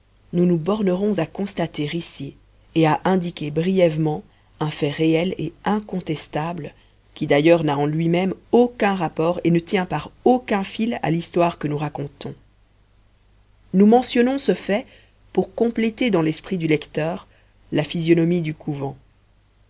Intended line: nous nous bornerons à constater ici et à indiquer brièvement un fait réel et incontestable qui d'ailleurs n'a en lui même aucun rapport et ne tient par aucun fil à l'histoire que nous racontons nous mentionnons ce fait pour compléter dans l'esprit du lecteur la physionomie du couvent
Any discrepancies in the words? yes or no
no